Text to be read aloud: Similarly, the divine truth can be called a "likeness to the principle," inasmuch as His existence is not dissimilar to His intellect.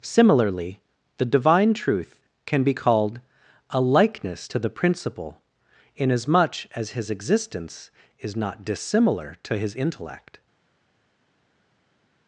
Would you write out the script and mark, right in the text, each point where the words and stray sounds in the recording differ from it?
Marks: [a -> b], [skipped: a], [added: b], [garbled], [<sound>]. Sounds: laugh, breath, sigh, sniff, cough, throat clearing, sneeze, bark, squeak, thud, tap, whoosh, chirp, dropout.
Similarly, the divine truth can be called a "likeness to the principle," inasmuch as His existence is not dissimilar to His intellect.